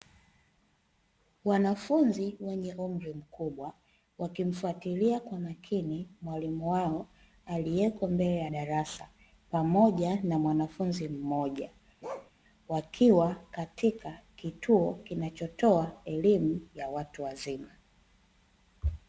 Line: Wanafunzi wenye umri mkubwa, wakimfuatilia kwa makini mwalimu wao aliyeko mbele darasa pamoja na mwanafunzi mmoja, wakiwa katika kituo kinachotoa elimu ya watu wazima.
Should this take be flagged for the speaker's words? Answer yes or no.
yes